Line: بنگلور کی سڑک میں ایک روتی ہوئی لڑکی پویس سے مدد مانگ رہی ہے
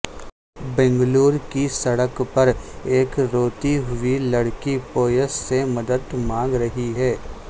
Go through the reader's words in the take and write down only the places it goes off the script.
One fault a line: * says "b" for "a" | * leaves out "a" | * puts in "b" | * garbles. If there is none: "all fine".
* says "پر" for "میں"